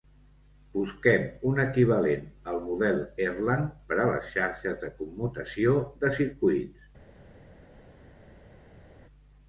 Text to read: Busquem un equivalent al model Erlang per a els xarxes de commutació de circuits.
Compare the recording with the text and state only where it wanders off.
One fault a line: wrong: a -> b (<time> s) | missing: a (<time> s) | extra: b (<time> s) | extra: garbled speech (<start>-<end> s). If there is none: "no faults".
wrong: els -> les (4.1 s)